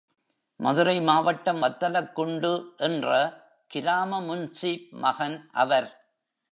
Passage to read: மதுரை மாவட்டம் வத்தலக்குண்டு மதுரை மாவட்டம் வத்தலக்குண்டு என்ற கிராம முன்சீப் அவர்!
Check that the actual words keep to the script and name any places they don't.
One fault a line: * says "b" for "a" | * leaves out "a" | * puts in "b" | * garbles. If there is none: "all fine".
* leaves out "மதுரை மாவட்டம் வத்தலக்குண்டு"
* puts in "மகன்"